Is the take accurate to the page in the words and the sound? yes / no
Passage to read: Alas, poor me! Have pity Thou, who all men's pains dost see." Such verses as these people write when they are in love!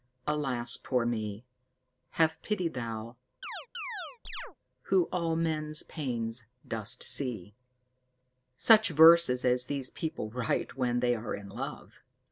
no